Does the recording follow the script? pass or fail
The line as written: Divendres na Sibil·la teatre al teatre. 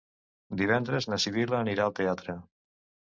fail